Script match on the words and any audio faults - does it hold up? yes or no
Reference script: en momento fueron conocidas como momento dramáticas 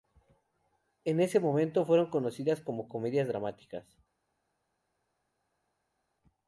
no